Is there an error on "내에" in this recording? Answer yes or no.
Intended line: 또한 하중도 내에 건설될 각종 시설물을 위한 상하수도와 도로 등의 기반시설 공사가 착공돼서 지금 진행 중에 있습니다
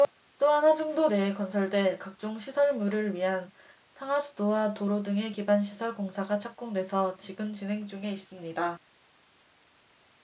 no